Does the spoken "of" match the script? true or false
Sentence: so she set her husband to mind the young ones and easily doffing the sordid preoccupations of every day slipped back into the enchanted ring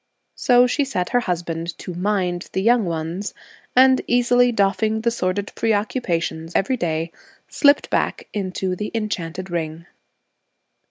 false